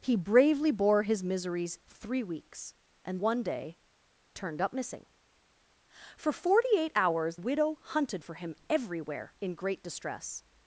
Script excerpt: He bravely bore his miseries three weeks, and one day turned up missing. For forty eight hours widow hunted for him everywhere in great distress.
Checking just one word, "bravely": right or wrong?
right